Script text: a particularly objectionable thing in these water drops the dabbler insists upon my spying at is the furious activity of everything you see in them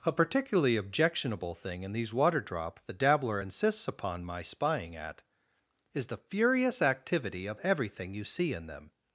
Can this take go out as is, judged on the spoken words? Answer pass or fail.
fail